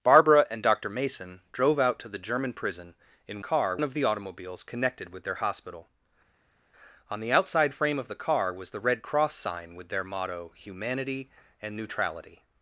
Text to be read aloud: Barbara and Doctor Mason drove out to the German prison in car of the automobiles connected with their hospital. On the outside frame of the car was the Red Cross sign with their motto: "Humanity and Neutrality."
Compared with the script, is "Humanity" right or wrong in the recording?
right